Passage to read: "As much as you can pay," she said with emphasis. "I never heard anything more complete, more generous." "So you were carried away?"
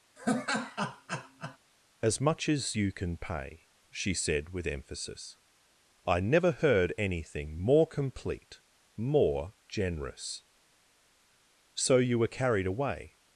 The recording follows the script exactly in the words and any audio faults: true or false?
false